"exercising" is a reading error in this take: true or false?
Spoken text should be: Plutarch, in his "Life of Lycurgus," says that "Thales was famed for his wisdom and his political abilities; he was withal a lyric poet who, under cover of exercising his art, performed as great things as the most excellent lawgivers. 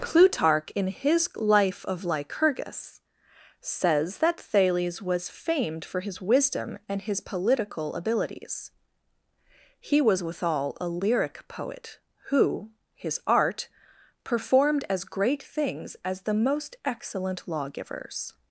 true